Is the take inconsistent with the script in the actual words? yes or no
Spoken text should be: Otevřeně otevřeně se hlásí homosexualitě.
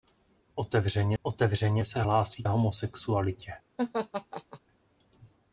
no